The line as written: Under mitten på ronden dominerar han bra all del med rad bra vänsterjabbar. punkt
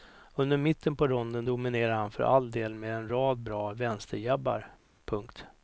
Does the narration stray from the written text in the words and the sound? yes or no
yes